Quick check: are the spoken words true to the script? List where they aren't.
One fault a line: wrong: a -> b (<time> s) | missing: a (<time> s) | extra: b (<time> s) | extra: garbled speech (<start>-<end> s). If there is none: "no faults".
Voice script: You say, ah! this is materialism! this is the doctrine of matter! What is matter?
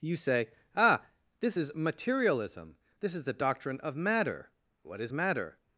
no faults